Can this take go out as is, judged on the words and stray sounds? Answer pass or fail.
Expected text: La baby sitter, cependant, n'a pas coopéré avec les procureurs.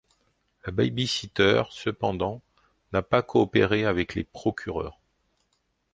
pass